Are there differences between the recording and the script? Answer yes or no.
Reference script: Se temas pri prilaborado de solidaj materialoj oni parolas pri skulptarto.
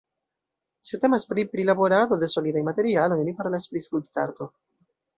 no